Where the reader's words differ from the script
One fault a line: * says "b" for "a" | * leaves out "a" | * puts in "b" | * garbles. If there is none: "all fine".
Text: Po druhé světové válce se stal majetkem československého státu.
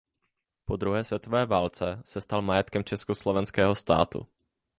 all fine